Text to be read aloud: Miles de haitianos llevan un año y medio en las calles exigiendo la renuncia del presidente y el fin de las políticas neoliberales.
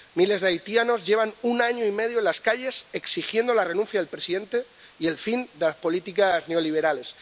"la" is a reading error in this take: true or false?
false